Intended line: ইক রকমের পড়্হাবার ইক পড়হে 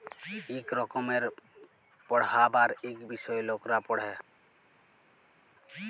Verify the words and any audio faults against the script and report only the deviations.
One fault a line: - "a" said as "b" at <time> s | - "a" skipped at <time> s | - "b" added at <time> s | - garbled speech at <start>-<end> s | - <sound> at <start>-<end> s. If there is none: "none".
- "বিষয় লকরা" added at 3.1 s